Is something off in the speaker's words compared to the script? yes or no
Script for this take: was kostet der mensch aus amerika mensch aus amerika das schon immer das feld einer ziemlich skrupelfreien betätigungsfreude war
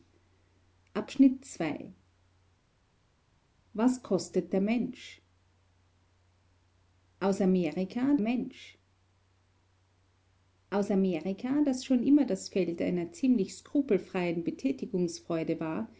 no